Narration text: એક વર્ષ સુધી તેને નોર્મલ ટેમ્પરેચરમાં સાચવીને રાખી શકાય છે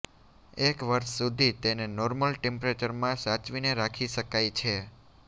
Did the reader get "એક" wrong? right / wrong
right